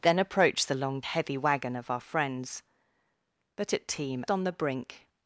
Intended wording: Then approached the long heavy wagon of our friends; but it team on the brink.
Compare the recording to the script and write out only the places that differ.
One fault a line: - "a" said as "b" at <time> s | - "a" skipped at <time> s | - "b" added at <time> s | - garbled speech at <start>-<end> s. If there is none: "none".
none